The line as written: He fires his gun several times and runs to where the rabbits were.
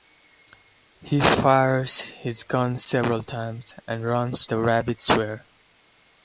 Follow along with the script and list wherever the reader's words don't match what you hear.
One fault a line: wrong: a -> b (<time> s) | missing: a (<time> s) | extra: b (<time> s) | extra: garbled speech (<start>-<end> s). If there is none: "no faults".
missing: to where (4.5 s)